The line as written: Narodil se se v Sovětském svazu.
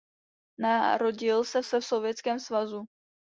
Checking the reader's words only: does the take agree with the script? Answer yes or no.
yes